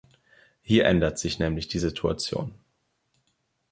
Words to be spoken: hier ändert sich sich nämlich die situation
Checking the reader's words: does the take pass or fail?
fail